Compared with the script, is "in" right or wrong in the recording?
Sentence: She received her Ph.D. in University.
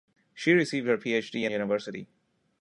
right